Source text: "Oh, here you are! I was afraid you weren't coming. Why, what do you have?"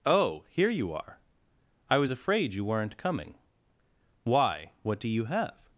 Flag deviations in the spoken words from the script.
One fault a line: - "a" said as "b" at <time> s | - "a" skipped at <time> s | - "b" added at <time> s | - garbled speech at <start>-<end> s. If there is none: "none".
none